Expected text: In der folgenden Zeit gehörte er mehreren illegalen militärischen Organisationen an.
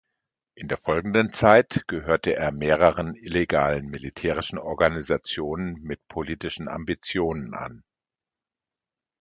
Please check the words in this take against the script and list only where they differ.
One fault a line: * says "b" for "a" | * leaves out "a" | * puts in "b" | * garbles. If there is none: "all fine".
* puts in "mit politischen Ambitionen"